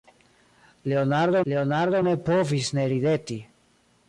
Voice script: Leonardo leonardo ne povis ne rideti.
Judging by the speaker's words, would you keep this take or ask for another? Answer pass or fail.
pass